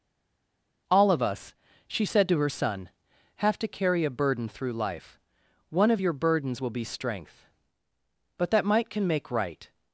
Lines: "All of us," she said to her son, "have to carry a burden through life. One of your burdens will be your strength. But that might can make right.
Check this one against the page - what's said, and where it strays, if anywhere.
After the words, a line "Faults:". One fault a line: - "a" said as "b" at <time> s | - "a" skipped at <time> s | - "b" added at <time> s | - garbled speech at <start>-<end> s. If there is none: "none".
"All of us," she said to her son, "have to carry a burden through life. One of your burdens will be strength. But that might can make right.
Faults:
- "your" skipped at 6.8 s